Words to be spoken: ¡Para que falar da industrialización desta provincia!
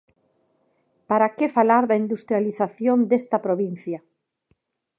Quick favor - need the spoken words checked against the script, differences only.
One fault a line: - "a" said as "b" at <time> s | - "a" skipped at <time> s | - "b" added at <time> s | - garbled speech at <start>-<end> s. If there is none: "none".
none